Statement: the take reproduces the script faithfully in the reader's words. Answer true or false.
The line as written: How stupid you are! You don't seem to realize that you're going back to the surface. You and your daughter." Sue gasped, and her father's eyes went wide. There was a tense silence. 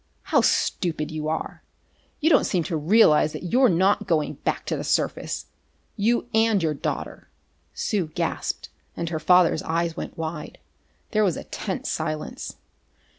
false